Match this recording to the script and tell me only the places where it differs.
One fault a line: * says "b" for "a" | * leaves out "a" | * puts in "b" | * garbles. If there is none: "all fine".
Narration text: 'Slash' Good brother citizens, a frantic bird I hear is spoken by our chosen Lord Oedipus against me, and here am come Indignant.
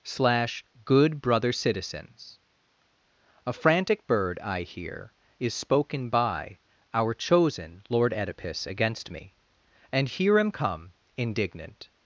all fine